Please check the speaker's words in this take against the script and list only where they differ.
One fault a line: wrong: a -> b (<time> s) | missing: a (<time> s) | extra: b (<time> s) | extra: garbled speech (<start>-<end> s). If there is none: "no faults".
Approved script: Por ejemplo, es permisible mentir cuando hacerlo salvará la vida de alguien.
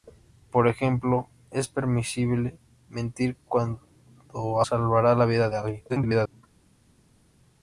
missing: hacerlo (4.6 s)
extra: garbled speech (5.9-6.4 s)